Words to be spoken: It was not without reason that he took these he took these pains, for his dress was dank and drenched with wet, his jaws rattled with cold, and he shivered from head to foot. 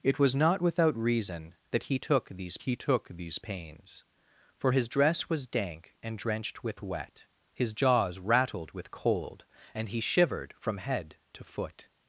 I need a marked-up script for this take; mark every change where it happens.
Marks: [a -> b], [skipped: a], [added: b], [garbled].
It was not without reason that he took these he took these pains, for his dress was dank and drenched with wet, his jaws rattled with cold, and he shivered from head to foot.